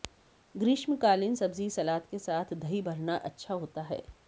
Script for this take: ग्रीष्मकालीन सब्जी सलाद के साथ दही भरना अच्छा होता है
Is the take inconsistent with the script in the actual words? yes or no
no